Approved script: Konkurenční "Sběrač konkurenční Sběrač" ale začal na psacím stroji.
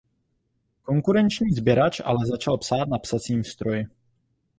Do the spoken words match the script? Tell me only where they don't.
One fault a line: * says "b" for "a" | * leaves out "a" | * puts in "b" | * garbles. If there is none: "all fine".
* leaves out "konkurenční Sběrač"
* puts in "psát"